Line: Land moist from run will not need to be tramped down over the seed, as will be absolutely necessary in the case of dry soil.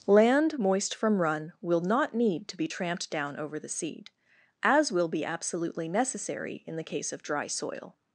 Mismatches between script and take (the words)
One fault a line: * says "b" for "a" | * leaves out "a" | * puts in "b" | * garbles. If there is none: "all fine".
all fine